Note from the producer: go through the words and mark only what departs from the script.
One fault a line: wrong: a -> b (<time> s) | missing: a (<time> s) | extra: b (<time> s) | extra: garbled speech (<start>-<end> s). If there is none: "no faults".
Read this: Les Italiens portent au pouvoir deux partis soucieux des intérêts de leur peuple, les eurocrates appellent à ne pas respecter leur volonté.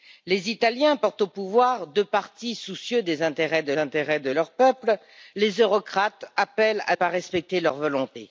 extra: intérêts de (3.8 s)
missing: ne (7.0 s)